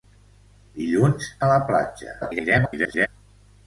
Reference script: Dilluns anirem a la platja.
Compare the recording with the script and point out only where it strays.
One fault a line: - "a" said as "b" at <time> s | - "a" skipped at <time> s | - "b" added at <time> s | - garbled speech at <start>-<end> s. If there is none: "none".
- "anirem" skipped at 1.3 s
- garbled speech at 2.2-3.1 s